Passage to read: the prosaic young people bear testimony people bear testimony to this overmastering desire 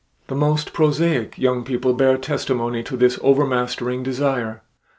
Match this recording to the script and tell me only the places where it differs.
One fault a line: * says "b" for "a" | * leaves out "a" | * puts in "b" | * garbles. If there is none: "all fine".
* puts in "most"
* leaves out "people bear testimony"